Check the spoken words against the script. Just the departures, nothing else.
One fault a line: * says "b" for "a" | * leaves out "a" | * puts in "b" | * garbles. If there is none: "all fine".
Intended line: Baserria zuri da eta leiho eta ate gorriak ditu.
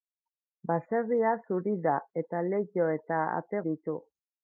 * leaves out "gorriak"